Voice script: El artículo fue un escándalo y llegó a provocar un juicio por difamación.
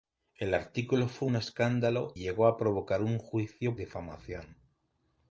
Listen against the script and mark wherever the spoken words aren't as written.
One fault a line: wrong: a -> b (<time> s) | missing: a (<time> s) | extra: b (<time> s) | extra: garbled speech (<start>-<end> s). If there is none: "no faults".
missing: y (2.1 s)
missing: por (3.8 s)